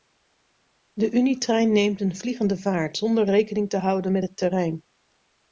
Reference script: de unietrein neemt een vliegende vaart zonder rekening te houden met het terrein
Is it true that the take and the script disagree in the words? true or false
false